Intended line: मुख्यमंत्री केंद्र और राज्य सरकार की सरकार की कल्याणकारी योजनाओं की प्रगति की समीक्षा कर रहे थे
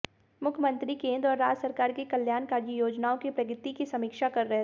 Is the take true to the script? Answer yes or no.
no